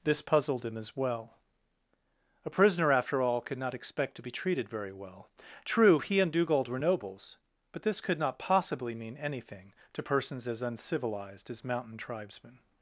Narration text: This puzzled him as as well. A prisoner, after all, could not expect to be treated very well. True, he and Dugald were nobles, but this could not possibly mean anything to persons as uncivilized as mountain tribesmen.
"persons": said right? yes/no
yes